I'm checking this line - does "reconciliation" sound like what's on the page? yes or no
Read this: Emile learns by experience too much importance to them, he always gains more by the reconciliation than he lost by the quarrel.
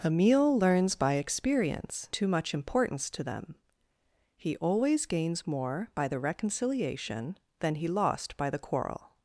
yes